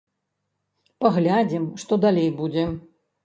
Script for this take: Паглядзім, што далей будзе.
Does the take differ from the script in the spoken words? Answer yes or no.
no